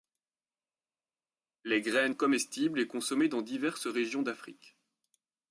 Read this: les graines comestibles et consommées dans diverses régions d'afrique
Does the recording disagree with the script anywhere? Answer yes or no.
no